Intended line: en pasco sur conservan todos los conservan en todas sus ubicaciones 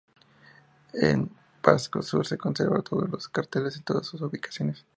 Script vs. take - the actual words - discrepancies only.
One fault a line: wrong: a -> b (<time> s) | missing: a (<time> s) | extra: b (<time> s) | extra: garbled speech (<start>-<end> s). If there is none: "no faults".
extra: se (2.2 s)
wrong: conservan -> carteles (3.3 s)